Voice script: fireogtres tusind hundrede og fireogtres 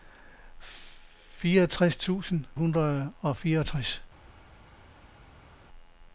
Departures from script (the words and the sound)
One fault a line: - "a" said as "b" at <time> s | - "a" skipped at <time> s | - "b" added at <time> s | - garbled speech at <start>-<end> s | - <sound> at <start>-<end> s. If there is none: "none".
none